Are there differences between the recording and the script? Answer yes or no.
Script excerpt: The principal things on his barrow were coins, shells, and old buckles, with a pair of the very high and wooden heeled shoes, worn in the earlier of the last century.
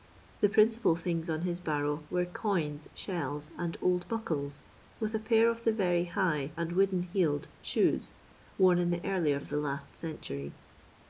no